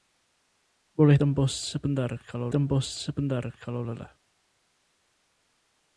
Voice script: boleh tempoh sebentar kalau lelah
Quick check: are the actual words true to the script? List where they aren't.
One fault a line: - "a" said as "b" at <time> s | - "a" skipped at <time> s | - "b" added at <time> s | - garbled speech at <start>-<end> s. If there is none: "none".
- "tempoh sebentar kalau" added at 2.5 s